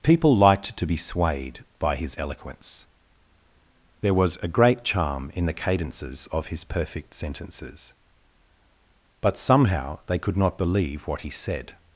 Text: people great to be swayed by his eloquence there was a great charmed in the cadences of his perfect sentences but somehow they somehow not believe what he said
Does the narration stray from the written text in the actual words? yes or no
yes